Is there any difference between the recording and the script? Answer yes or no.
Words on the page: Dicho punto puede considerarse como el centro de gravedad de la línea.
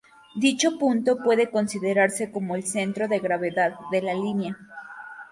no